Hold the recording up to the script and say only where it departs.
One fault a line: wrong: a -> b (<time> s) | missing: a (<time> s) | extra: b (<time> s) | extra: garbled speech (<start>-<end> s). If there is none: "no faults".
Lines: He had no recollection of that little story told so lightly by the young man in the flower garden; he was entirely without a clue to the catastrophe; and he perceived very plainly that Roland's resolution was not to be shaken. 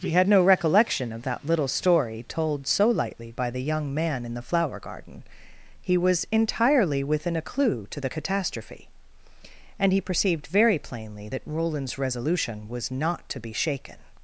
wrong: without -> within (7.0 s)